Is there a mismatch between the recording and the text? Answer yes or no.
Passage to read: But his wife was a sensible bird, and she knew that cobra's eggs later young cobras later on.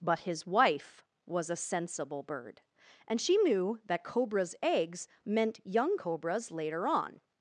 yes